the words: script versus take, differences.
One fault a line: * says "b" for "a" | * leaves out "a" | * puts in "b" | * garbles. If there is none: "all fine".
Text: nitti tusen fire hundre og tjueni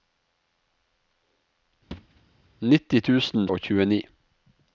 * leaves out "fire hundre"